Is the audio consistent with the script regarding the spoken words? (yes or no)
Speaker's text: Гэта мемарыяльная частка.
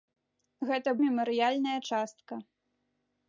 yes